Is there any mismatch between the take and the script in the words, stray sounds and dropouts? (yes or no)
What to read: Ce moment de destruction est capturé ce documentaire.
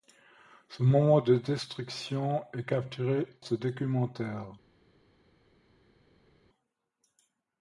no